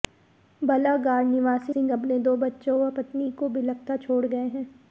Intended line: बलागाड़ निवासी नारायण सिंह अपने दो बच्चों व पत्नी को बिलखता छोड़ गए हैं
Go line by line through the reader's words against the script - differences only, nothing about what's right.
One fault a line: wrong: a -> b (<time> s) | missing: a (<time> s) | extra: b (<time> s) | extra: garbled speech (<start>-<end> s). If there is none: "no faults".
missing: नारायण (1.8 s)